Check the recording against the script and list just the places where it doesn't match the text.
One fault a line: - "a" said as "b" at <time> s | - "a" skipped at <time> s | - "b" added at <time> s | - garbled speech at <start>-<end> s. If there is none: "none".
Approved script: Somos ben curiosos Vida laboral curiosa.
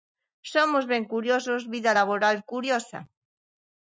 none